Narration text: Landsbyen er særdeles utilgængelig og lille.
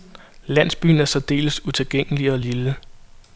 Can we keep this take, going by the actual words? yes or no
yes